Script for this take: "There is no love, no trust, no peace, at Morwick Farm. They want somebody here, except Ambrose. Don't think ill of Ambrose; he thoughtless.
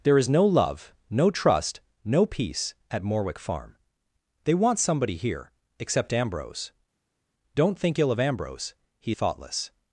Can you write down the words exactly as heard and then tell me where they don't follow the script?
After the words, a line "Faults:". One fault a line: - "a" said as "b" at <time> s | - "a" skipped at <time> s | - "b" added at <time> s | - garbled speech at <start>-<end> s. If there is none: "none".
"There is no love, no trust, no peace, at Morwick Farm. They want somebody here, except Ambrose. Don't think ill of Ambrose; he thoughtless.
Faults:
none